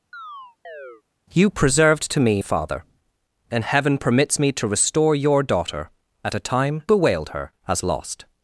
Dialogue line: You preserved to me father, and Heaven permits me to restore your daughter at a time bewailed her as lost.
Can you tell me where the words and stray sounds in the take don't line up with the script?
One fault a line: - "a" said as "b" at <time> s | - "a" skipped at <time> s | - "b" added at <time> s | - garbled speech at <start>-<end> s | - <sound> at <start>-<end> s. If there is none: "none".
- chirp at 0.1-1.0 s